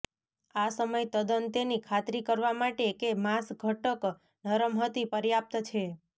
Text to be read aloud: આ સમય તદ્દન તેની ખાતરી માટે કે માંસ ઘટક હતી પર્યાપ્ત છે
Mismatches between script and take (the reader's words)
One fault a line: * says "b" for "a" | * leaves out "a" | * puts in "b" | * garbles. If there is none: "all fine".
* puts in "કરવા"
* puts in "નરમ"